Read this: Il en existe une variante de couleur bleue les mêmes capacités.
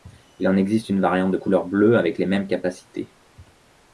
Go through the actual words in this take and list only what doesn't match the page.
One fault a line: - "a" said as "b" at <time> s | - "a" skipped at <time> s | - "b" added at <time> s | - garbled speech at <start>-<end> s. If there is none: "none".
- "avec" added at 2.0 s